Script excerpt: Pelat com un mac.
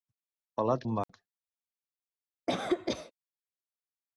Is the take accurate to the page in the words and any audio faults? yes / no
no